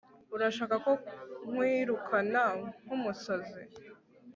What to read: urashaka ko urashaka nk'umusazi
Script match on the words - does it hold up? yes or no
no